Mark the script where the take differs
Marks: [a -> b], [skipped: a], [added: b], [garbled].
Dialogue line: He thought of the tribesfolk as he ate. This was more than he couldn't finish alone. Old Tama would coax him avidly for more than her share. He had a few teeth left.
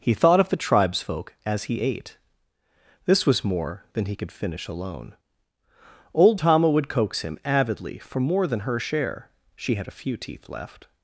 He thought of the tribesfolk as he ate. This was more than he [couldn't -> could] finish alone. Old Tama would coax him avidly for more than her share. [He -> She] had a few teeth left.